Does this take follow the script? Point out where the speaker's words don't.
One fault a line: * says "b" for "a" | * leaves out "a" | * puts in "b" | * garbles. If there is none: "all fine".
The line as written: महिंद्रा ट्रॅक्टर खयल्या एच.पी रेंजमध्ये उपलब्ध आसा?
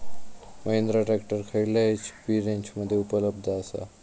all fine